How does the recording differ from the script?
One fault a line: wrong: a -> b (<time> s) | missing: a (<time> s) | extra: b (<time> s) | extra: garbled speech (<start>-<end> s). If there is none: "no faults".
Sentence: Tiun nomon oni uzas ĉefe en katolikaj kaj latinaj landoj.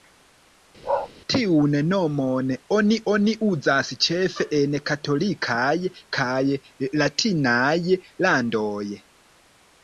extra: oni (3.1 s)